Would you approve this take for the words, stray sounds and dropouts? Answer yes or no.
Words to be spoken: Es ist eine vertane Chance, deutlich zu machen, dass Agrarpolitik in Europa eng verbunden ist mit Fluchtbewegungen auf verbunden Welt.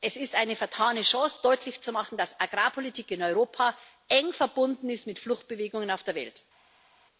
no